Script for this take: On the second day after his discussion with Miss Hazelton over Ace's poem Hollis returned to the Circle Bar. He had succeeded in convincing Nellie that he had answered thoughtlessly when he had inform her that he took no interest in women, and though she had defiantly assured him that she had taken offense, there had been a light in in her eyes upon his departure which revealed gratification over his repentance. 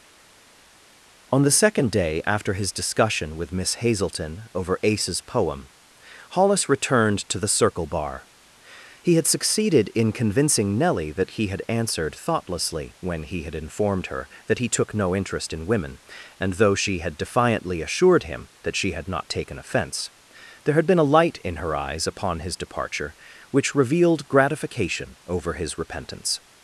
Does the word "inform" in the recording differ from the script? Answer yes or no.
yes